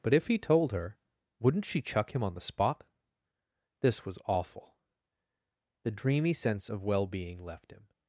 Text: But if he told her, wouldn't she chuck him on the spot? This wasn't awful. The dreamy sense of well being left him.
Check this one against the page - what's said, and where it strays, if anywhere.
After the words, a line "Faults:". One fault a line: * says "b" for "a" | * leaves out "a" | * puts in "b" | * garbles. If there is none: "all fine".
But if he told her, wouldn't she chuck him on the spot? This was awful. The dreamy sense of well being left him.
Faults:
* says "was" for "wasn't"